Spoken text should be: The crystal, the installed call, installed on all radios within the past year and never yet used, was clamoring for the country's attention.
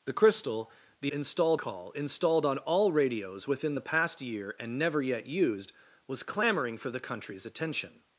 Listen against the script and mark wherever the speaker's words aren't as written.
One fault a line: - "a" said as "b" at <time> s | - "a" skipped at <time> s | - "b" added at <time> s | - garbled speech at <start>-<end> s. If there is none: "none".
none